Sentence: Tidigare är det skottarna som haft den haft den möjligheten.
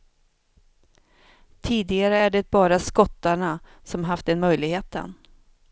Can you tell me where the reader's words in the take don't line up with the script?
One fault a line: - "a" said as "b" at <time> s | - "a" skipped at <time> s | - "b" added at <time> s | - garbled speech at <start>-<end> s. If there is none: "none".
- "bara" added at 2.5 s
- "haft den" skipped at 4.4 s